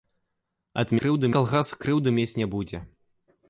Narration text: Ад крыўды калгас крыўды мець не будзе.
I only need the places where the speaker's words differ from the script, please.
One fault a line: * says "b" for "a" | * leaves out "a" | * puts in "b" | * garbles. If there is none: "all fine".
all fine